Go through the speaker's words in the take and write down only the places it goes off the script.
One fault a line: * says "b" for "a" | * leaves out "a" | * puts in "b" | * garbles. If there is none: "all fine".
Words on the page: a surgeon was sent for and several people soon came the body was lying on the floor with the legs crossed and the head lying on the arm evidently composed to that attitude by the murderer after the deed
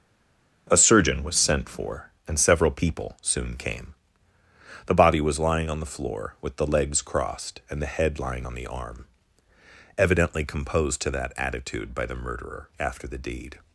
all fine